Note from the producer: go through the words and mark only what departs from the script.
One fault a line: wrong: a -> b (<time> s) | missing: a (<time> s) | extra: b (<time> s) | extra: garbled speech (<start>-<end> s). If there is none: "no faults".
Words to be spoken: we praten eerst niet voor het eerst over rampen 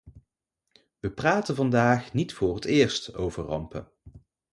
wrong: eerst -> vandaag (1.6 s)